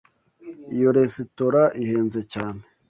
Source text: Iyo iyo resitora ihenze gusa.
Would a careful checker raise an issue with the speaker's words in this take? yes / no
yes